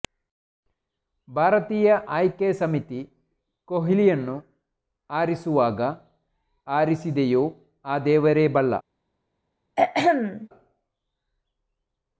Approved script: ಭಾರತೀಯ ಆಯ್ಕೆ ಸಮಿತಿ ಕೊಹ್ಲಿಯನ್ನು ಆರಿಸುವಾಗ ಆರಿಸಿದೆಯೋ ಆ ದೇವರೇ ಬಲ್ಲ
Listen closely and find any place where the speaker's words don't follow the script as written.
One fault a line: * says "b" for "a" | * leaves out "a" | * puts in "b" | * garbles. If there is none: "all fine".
all fine